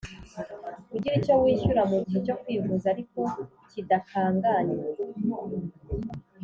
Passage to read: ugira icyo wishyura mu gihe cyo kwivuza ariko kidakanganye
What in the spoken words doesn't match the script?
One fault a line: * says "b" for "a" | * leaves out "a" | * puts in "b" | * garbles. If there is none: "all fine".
all fine